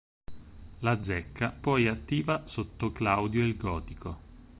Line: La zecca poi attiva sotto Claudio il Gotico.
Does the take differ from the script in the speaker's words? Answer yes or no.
no